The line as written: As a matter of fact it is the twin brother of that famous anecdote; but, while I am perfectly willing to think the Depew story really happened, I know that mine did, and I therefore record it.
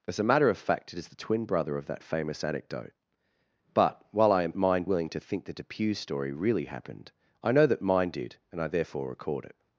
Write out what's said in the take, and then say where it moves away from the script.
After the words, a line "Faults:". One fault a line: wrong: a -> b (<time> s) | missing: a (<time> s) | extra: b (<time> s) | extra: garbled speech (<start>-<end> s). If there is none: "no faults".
As a matter of fact it is the twin brother of that famous anecdote; but, while I am mine willing to think the Depew story really happened, I know that mine did, and I therefore record it.
Faults:
wrong: perfectly -> mine (4.6 s)